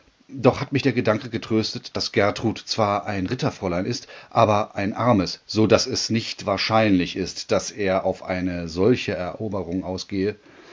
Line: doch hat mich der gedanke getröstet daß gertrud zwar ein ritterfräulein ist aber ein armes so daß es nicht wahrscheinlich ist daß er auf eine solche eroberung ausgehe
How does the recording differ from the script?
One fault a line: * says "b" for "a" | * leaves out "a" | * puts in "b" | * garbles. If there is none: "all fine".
all fine